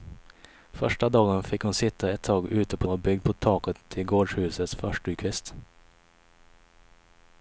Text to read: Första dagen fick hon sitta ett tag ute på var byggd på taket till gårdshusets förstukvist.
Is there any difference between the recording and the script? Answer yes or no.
no